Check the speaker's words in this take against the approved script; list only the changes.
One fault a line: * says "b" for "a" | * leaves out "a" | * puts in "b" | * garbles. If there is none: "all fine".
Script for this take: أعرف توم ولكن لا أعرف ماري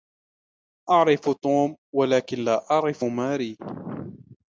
all fine